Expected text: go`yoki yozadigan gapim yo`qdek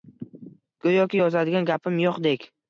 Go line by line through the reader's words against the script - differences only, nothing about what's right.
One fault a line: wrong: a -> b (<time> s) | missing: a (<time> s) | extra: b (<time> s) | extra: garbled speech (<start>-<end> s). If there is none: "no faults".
no faults